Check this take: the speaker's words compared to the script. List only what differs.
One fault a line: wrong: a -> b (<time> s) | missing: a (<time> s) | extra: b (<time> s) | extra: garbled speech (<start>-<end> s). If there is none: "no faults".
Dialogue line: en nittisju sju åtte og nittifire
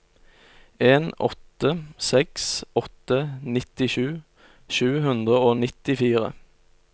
extra: åtte seks åtte (1.3 s)
wrong: åtte -> hundre (5.1 s)